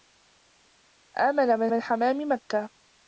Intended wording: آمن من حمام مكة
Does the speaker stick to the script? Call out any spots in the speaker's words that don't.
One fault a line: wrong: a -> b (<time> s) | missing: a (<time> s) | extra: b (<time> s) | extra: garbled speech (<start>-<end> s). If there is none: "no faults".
extra: من (1.7 s)